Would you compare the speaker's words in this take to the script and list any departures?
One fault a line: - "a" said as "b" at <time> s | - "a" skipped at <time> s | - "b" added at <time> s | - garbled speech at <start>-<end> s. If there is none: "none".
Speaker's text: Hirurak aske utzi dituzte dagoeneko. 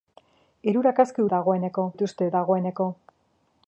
- "utzi" said as "dagoeneko" at 1.4 s